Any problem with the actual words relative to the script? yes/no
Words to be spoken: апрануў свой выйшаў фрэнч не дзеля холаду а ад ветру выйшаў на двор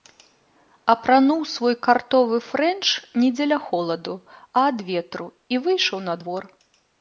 yes